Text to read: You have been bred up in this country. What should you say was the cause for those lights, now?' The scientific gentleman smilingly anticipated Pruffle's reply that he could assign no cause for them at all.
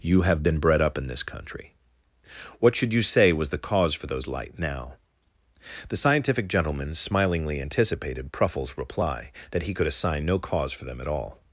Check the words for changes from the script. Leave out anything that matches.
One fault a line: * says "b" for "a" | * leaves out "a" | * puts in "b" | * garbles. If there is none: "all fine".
* says "light" for "lights"